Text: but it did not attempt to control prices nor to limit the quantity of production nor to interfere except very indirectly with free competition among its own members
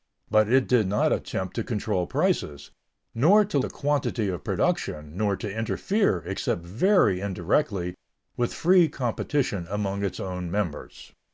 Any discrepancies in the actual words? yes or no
yes